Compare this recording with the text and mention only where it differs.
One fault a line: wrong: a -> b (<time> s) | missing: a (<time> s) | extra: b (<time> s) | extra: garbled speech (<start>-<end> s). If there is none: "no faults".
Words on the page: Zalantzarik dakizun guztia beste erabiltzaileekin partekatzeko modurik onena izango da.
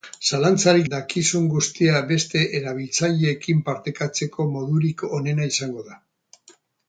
no faults